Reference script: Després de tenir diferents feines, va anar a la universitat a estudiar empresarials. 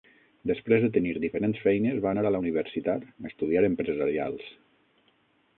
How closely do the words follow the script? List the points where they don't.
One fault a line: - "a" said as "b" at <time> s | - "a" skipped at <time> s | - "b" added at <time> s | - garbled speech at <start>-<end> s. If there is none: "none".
none